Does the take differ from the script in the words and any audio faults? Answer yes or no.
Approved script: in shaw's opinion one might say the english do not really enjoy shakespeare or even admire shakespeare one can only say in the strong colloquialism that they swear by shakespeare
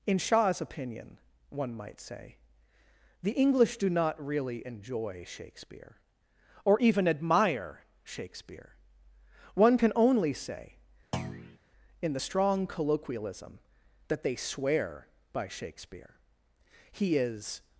yes